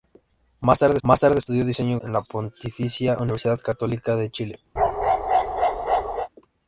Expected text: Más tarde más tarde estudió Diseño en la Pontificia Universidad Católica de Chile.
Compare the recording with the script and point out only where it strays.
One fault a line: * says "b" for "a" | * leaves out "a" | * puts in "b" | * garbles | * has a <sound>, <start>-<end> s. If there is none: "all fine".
* has a bark, 4.8-6.3 s